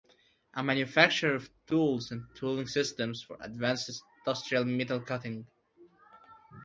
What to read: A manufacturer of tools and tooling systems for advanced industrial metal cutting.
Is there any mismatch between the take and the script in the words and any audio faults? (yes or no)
no